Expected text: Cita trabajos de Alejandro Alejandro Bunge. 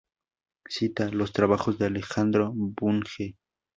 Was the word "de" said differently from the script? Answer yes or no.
no